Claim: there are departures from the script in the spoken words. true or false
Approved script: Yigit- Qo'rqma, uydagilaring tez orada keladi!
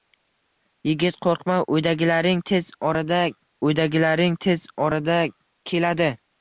true